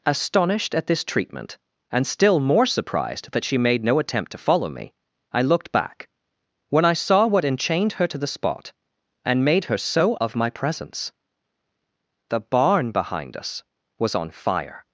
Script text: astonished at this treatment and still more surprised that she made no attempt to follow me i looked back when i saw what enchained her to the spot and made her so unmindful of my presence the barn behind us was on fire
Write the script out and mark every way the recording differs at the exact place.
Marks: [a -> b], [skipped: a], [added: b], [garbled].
astonished at this treatment and still more surprised that she made no attempt to follow me i looked back when i saw what enchained her to the spot and made her so [skipped: unmindful] of my presence the barn behind us was on fire